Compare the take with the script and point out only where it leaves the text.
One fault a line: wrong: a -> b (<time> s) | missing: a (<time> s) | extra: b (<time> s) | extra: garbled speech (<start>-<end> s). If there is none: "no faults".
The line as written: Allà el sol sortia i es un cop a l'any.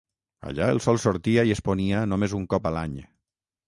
extra: ponia només (1.7 s)